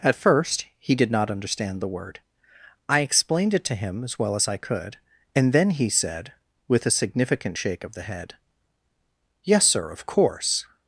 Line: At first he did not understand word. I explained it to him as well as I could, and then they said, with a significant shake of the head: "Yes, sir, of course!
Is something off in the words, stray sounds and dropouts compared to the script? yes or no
yes